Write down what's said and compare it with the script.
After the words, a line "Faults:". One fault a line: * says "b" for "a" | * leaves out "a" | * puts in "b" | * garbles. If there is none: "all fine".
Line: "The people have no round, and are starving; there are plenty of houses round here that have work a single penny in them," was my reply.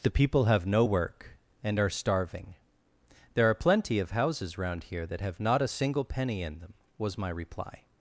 "The people have no work, and are starving; there are plenty of houses round here that have not a single penny in them," was my reply.
Faults:
* says "work" for "round"
* says "not" for "work"